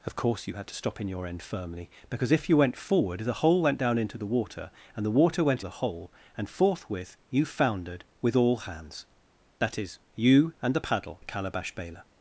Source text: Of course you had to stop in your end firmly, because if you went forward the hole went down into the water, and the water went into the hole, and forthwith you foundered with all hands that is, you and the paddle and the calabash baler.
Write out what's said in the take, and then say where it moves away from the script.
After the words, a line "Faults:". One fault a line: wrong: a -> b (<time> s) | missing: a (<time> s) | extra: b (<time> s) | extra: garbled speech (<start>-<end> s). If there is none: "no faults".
Of course you had to stop in your end firmly, because if you went forward the hole went down into the water, and the water went the hole, and forthwith you foundered with all hands that is, you and the paddle the calabash baler.
Faults:
missing: into (5.7 s)
missing: and (11.2 s)